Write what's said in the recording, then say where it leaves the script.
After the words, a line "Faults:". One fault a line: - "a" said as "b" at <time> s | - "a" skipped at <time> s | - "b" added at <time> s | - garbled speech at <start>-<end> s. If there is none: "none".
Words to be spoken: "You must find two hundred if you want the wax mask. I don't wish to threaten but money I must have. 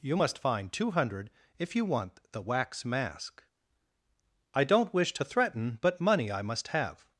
"You must find two hundred if you want the wax mask. I don't wish to threaten but money I must have.
Faults:
none